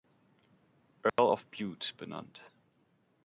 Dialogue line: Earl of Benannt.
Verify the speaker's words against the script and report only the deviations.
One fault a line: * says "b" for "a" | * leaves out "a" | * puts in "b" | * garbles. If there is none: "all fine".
* puts in "Bute"